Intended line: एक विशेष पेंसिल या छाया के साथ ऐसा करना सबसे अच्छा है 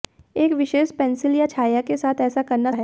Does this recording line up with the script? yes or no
no